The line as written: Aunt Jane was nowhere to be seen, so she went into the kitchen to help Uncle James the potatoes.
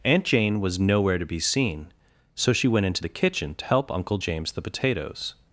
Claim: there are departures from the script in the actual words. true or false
false